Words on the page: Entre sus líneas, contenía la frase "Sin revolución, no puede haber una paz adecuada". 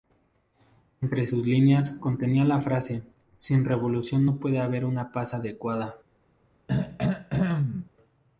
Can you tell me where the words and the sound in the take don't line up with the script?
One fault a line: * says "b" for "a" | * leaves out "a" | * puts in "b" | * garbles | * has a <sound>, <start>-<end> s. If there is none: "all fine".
* has a throat clearing, 6.7-7.9 s